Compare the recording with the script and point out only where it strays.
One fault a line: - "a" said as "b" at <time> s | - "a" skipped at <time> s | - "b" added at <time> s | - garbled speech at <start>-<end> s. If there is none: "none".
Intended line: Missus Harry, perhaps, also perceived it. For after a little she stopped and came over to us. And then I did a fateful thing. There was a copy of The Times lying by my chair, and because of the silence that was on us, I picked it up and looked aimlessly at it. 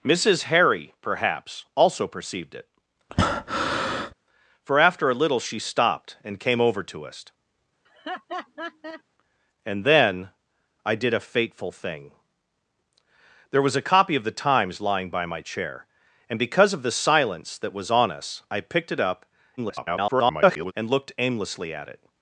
- garbled speech at 19.6-20.7 s